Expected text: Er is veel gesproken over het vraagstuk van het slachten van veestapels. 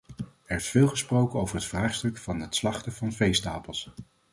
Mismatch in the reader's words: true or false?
false